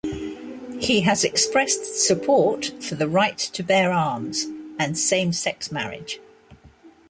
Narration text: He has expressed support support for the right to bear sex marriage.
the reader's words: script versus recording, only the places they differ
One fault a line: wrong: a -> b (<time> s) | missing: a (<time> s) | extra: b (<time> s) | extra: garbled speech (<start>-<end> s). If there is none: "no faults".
missing: support (2.6 s)
extra: arms and same (3.9 s)